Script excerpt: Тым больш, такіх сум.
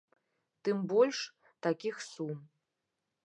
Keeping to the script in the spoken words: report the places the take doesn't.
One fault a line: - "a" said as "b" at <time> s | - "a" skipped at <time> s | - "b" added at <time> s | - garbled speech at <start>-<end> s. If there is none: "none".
none